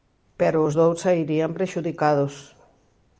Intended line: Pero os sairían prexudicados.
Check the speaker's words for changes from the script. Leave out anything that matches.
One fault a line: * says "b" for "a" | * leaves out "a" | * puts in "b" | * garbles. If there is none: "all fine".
* puts in "dous"